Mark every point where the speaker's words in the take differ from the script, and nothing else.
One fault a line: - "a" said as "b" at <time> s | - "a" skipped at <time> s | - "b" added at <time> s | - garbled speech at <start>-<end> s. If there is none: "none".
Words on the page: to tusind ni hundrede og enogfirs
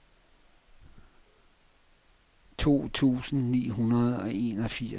none